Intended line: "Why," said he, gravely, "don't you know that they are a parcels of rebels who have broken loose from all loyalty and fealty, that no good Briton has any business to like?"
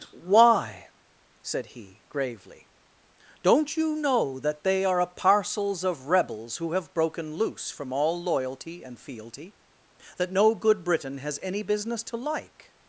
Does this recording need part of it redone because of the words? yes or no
no